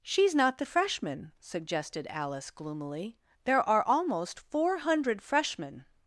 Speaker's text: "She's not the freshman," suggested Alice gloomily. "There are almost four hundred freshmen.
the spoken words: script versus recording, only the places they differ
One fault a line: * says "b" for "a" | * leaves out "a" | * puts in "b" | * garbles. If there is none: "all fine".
all fine